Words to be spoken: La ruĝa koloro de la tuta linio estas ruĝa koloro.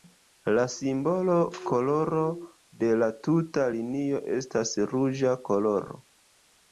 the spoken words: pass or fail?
fail